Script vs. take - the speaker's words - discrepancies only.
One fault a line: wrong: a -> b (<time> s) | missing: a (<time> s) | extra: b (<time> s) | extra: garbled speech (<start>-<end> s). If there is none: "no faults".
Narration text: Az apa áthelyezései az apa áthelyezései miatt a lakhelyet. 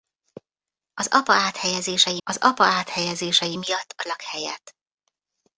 no faults